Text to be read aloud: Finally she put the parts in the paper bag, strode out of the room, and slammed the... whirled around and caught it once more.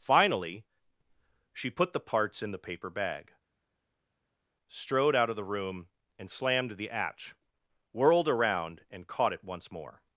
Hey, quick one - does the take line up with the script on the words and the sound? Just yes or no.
no